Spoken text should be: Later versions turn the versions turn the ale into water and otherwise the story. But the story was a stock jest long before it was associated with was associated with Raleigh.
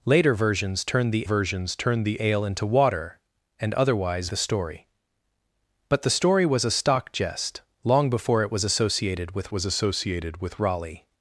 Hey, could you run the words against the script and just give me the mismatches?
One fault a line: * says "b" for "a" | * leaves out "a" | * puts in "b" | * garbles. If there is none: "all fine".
all fine